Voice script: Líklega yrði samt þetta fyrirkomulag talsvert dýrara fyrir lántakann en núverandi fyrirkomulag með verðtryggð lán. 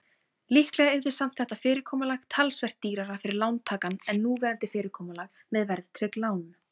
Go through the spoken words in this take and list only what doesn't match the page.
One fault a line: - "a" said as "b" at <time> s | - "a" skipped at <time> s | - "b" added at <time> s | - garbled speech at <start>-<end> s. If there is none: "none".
none